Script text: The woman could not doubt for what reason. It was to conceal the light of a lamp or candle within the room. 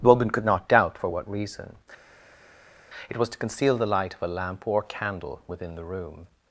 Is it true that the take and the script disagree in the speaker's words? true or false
false